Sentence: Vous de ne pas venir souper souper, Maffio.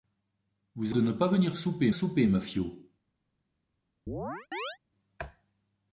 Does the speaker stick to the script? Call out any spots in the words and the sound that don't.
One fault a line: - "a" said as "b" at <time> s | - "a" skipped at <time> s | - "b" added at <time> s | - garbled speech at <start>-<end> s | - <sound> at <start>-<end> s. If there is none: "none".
- chirp at 4.1-4.8 s